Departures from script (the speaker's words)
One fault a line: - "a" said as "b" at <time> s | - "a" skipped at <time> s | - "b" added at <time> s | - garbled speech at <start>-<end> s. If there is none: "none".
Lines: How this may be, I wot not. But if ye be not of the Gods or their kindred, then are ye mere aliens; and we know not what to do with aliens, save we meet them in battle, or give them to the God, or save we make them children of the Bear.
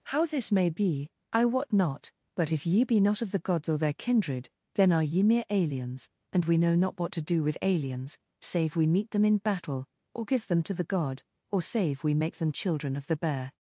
none